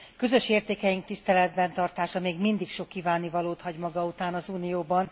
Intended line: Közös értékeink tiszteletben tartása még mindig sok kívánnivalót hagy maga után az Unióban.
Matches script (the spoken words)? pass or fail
pass